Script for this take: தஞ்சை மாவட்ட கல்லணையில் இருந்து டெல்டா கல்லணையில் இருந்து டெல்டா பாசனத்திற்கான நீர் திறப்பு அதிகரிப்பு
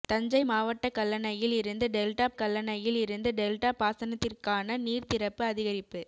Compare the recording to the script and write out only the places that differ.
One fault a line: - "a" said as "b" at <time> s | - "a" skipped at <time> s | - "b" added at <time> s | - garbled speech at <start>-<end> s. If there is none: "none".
none